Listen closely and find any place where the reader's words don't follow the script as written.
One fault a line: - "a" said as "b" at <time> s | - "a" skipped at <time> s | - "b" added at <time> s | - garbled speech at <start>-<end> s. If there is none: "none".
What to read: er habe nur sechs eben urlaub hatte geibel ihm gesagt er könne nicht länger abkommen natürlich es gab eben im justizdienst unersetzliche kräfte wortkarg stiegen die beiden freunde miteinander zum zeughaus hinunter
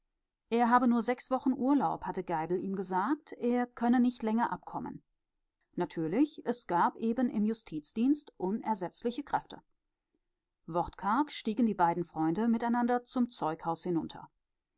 - "eben" said as "wochen" at 1.3 s